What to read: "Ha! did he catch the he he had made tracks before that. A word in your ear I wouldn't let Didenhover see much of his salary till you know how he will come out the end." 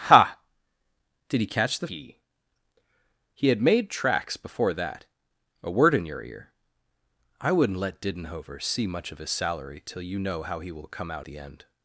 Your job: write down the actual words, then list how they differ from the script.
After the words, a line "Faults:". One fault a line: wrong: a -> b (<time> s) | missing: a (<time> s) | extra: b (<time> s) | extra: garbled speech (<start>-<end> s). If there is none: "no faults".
"Ha! did he catch the he he had made tracks before that. A word in your ear I wouldn't let Didenhover see much of his salary till you know how he will come out the end."
Faults:
no faults